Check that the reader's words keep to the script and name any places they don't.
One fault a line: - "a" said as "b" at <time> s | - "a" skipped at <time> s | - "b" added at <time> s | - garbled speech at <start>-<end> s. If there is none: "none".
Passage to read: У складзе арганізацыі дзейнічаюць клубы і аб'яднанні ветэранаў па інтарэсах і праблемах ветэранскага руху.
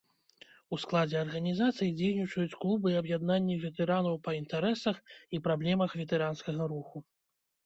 none